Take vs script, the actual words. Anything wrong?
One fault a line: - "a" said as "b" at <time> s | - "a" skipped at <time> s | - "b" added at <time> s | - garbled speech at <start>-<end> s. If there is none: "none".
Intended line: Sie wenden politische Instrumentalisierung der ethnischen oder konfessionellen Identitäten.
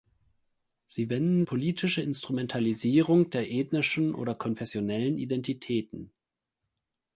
none